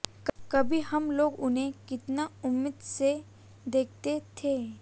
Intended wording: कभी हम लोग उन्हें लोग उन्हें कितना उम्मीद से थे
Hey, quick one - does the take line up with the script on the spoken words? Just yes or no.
no